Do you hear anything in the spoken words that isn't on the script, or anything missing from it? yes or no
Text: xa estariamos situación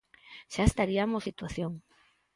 no